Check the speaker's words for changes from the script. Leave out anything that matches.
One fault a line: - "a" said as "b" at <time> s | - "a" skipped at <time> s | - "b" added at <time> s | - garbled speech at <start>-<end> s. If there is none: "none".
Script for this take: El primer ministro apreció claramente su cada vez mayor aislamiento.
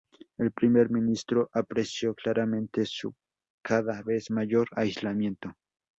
none